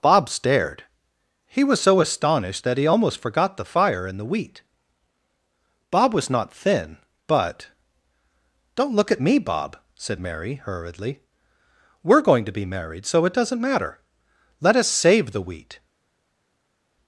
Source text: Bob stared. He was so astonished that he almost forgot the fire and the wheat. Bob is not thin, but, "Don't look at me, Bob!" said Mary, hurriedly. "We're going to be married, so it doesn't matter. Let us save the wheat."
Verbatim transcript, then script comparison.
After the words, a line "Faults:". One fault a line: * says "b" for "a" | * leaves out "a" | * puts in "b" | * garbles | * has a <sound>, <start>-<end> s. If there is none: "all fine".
Bob stared. He was so astonished that he almost forgot the fire and the wheat. Bob was not thin, but, "Don't look at me, Bob!" said Mary, hurriedly. "We're going to be married, so it doesn't matter. Let us save the wheat."
Faults:
* says "was" for "is"